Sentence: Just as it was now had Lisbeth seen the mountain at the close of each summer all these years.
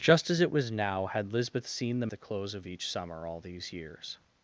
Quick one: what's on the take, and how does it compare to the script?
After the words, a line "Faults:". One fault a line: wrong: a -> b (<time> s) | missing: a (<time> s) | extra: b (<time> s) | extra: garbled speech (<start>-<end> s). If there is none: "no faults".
Just as it was now had Lisbeth seen the the close of each summer all these years.
Faults:
missing: mountain at (2.1 s)